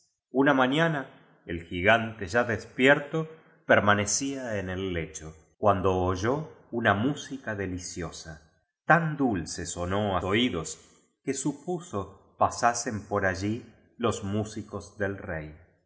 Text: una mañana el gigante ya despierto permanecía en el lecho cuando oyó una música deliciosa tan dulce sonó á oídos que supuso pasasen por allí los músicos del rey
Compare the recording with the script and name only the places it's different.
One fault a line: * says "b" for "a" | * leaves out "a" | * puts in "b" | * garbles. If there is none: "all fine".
all fine